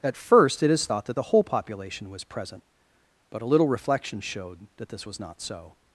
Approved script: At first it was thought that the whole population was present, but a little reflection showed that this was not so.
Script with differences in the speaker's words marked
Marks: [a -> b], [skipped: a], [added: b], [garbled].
At first it [was -> is] thought that the whole population was present, but a little reflection showed that this was not so.